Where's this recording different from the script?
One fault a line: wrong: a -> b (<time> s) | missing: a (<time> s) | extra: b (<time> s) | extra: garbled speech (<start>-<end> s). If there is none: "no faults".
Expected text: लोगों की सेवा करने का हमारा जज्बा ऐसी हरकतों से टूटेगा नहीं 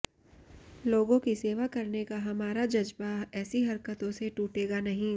no faults